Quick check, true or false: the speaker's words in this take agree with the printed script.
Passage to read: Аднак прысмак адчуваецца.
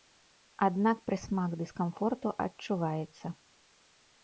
false